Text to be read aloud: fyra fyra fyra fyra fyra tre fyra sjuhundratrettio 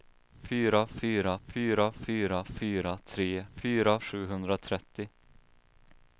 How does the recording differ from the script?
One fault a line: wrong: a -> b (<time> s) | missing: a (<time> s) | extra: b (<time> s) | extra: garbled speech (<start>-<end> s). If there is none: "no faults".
no faults